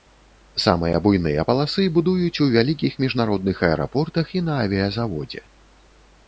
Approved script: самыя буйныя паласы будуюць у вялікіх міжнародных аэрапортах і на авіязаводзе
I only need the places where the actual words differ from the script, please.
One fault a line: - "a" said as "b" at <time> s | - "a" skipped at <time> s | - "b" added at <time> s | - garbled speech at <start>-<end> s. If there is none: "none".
none